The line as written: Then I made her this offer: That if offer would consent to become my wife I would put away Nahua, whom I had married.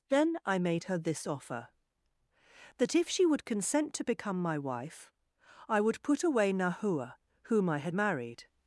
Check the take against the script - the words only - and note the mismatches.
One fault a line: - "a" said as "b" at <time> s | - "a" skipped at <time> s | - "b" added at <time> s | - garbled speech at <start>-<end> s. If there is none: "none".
- "offer" said as "she" at 3.1 s